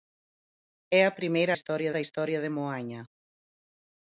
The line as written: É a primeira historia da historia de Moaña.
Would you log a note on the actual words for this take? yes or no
no